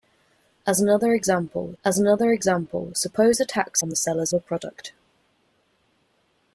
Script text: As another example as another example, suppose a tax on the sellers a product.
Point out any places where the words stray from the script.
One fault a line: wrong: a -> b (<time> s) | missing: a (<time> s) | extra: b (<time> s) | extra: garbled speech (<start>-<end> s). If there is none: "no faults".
no faults